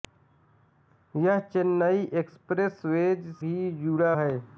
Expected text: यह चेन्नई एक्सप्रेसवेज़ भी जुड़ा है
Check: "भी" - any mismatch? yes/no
no